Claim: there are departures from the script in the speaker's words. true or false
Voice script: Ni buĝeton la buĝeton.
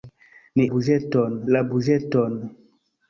false